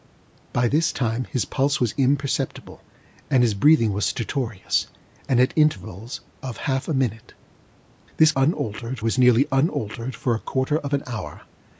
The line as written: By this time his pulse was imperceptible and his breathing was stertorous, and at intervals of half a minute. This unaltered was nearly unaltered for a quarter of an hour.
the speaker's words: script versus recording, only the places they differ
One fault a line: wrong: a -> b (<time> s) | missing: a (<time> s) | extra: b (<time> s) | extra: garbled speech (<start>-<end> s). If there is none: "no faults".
no faults